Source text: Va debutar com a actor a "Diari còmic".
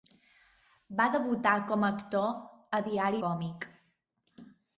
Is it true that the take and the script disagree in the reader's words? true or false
false